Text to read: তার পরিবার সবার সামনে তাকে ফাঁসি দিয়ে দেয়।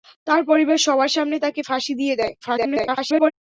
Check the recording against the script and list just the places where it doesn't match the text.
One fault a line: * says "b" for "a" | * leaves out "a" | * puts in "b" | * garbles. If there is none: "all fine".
* garbles